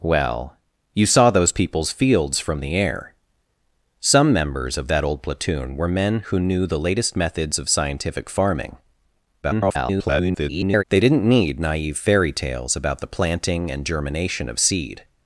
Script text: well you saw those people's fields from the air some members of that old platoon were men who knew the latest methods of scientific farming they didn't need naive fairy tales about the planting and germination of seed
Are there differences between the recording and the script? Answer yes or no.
yes